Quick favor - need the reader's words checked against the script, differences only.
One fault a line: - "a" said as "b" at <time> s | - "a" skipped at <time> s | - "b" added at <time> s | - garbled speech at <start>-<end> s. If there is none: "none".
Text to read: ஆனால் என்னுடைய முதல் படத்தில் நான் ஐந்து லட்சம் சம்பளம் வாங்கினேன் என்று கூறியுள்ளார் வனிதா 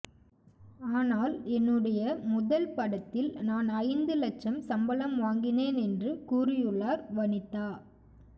none